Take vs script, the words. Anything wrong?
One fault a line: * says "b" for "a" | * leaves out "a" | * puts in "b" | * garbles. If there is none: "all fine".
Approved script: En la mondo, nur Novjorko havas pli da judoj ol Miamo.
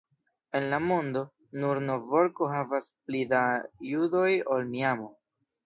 all fine